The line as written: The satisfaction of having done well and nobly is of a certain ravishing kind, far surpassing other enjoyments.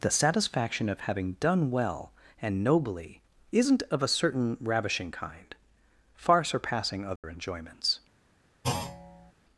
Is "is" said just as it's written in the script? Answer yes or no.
no